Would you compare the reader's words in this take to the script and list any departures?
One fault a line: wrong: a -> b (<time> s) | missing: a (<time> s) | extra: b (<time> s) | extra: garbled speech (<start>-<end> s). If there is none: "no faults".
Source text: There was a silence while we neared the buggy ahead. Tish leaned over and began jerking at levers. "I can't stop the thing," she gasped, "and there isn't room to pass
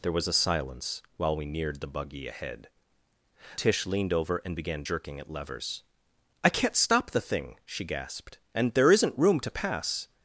no faults